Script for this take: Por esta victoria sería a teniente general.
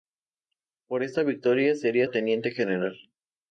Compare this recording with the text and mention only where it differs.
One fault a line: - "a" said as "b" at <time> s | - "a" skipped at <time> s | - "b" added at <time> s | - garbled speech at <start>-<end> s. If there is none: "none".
none